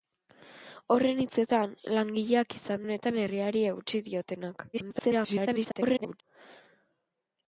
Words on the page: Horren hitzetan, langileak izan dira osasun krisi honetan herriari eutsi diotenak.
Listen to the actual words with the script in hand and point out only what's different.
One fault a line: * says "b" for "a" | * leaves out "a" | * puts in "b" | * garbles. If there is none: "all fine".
* leaves out "dira osasun krisi"
* garbles